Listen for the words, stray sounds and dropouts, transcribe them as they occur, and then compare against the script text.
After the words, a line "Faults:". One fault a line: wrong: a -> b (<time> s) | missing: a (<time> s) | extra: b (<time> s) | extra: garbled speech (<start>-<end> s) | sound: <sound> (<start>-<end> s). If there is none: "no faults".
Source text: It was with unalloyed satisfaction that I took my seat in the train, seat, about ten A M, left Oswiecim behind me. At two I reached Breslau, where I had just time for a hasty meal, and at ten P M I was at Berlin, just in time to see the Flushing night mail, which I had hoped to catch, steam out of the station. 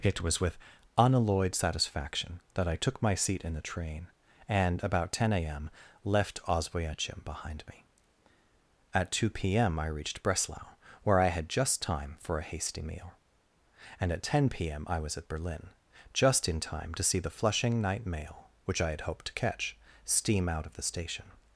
It was with unalloyed satisfaction that I took my seat in the train, and, about ten A M, left Oswiecim behind me. At two P M I reached Breslau, where I had just time for a hasty meal, and at ten P M I was at Berlin, just in time to see the Flushing night mail, which I had hoped to catch, steam out of the station.
Faults:
wrong: seat -> and (4.5 s)
extra: P M (9.3 s)